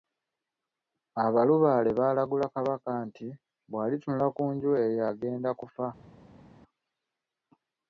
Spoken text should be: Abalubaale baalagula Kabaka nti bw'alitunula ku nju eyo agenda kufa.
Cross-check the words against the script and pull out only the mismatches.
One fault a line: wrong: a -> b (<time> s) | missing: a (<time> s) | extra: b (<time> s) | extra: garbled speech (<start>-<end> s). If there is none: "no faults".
no faults